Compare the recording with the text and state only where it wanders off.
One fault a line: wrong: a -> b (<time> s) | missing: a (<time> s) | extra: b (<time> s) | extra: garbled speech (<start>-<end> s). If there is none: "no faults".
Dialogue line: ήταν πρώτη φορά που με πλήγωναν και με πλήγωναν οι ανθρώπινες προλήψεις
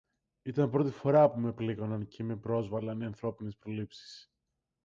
wrong: πλήγωναν -> πρόσβαλλαν (2.4 s)